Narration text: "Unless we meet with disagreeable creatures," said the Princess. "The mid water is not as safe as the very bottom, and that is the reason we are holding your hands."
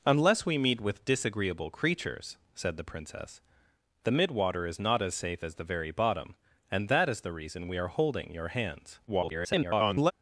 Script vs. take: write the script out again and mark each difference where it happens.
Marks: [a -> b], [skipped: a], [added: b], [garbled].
"Unless we meet with disagreeable creatures," said the Princess. "The mid water is not as safe as the very bottom, and that is the reason we are holding your hands." [garbled]